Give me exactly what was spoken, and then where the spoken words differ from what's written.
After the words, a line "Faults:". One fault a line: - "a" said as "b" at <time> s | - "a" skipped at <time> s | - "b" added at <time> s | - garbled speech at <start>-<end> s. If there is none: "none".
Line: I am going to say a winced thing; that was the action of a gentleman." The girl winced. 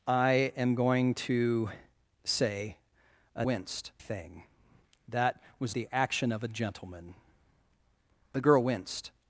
I am going to say a winced thing; that was the action of a gentleman." The girl winced.
Faults:
none